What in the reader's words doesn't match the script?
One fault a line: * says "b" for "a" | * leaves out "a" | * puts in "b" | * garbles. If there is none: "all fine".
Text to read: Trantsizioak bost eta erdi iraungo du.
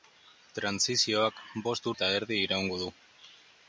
all fine